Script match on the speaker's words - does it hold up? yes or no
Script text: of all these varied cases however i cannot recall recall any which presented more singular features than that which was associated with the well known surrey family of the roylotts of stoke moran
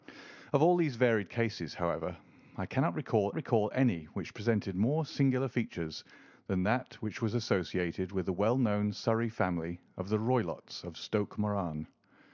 yes